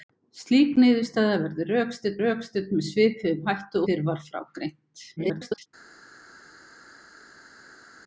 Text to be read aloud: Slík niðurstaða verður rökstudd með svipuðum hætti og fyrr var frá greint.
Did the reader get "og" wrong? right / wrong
wrong